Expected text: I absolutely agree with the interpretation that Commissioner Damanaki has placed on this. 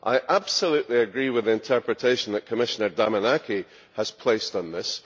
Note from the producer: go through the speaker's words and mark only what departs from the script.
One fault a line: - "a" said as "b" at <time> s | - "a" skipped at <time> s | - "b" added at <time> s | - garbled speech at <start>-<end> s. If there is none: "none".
none